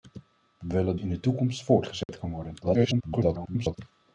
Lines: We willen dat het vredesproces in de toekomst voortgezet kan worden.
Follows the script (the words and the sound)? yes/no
no